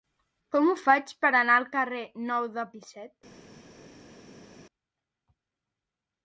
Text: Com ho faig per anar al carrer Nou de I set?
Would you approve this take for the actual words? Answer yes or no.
yes